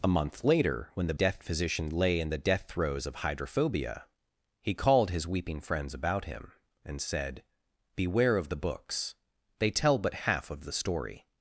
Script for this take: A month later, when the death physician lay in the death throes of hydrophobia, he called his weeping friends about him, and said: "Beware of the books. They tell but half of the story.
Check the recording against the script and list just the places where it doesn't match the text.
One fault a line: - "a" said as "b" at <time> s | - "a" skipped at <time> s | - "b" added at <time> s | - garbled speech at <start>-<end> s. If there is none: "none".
none